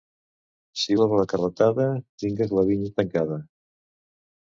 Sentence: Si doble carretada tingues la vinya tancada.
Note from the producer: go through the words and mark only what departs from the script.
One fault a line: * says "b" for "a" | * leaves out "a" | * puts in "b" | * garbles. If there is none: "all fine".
all fine